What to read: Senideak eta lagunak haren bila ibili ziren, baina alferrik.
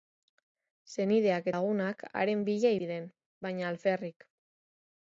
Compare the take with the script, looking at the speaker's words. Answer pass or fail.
fail